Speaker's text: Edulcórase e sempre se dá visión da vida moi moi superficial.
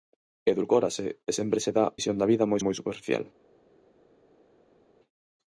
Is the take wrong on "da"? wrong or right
right